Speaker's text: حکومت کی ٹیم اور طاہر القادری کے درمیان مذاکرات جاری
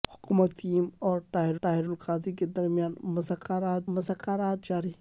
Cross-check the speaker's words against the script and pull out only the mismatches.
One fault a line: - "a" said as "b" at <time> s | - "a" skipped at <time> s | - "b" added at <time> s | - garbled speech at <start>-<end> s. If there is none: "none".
- "کی" skipped at 0.5 s
- "طاہر" added at 1.6 s
- "مذاکرات" added at 4.0 s